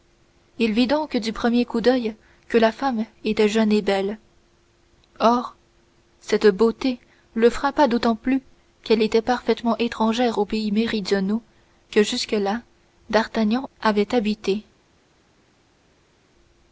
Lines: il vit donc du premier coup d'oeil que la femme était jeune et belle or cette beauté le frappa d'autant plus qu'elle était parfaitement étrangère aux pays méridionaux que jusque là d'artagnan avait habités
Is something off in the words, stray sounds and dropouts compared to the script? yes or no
no